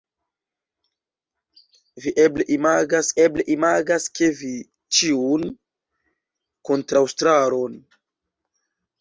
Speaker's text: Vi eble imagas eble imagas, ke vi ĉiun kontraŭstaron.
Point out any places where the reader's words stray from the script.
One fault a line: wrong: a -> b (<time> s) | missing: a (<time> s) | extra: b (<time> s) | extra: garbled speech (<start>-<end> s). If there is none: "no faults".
no faults